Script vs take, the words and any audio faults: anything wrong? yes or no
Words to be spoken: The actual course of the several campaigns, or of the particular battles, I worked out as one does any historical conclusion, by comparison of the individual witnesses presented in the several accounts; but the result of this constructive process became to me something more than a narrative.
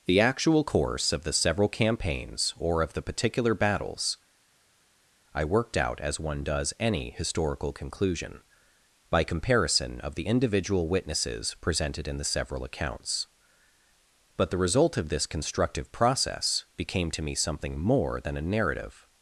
no